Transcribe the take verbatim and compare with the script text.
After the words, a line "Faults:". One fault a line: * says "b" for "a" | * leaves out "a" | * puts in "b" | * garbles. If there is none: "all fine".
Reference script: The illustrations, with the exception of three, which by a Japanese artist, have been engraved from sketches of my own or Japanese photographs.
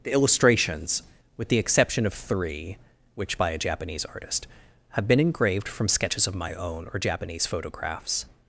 The illustrations, with the exception of three, which by a Japanese artist, have been engraved from sketches of my own or Japanese photographs.
Faults:
all fine